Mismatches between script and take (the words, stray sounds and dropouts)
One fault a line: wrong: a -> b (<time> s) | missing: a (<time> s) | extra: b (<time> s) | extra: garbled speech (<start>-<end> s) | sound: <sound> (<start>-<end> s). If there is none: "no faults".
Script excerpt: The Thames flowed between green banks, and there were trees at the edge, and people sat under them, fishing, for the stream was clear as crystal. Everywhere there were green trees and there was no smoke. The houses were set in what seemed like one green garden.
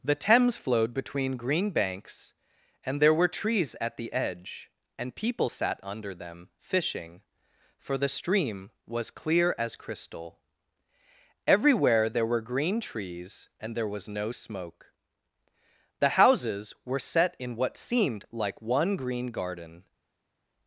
no faults